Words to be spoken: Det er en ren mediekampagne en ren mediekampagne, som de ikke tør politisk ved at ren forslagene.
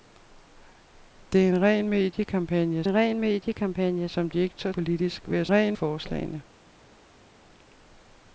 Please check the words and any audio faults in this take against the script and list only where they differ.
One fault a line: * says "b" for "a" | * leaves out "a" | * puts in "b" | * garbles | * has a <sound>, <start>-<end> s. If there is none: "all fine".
all fine